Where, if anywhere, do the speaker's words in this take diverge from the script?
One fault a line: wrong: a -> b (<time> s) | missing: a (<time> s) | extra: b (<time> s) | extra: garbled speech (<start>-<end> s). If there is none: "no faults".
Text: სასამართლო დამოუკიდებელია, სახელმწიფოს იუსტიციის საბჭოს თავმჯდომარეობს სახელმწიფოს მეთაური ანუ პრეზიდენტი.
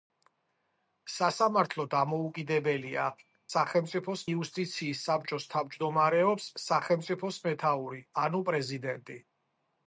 no faults